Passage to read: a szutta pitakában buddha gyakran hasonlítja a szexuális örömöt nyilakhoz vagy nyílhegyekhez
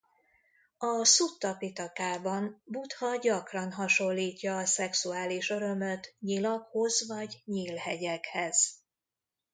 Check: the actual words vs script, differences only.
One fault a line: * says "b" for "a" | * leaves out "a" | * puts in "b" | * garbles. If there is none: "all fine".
all fine